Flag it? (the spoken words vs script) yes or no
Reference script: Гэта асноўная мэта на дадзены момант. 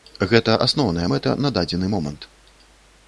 no